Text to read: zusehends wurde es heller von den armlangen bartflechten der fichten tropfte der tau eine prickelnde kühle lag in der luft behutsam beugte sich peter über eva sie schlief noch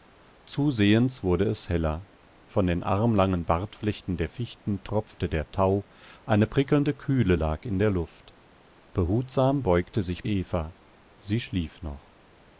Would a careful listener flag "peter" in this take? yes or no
yes